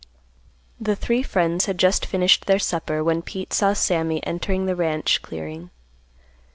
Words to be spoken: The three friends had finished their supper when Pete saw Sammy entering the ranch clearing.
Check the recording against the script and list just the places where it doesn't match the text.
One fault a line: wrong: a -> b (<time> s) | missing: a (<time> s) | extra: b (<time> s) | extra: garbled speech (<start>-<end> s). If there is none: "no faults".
extra: just (1.8 s)